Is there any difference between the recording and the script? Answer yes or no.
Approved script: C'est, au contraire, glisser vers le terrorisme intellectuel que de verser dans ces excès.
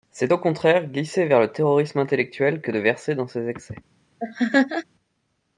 no